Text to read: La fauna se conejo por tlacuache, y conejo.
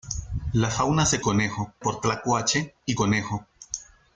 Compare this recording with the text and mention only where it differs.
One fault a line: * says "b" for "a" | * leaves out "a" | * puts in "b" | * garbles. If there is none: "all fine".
all fine